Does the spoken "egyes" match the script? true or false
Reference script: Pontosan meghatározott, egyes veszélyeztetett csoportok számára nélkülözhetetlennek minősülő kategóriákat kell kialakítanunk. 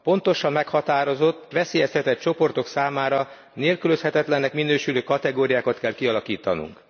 false